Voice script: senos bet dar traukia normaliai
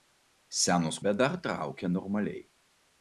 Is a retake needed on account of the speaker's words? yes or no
no